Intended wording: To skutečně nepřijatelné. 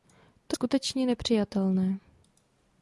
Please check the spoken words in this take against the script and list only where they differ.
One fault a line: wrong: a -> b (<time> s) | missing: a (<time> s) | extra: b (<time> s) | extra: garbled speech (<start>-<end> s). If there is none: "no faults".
no faults